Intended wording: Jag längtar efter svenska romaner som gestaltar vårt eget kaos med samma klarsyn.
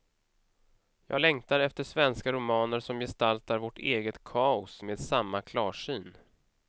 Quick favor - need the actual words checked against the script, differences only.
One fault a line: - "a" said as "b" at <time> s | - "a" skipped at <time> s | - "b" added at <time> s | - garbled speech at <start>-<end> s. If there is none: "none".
none